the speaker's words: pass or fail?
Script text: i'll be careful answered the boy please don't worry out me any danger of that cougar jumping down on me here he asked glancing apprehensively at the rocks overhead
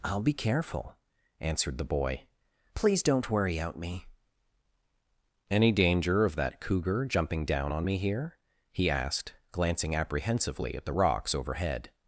pass